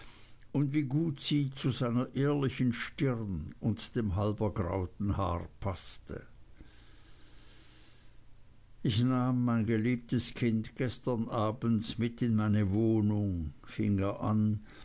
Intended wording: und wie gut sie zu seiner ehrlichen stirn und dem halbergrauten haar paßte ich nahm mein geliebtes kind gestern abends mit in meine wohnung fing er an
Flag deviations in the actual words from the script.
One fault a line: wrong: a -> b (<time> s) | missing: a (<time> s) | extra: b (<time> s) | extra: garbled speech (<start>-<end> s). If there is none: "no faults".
no faults